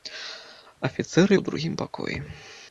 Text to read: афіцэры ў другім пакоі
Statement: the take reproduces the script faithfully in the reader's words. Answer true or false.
true